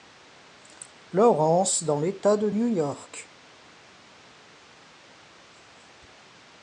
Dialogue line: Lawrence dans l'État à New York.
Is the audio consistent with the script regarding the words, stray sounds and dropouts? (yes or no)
no